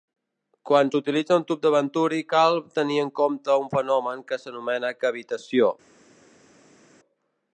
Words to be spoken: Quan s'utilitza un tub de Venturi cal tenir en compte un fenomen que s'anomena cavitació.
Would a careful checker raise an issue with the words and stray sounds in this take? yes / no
no